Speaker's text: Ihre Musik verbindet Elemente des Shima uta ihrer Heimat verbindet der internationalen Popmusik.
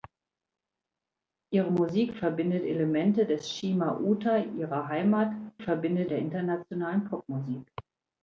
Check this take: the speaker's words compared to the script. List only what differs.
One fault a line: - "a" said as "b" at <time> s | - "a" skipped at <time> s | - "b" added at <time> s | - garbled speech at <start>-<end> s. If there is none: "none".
none